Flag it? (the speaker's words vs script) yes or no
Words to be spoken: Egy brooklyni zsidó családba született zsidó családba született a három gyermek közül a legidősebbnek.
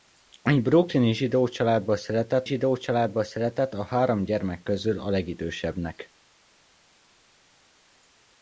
no